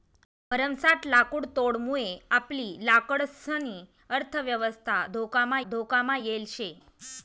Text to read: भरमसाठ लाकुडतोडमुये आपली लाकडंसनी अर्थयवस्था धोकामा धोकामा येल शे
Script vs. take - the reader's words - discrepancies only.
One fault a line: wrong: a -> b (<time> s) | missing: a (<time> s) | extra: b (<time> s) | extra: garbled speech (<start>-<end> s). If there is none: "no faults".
no faults